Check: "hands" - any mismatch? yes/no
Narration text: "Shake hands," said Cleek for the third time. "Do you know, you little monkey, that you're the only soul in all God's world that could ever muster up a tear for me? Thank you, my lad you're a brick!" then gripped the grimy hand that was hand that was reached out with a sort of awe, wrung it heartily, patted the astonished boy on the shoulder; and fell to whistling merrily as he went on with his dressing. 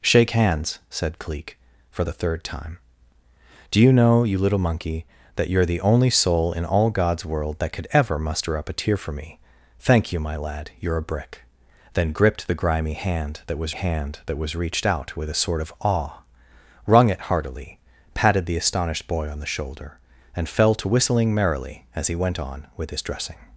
no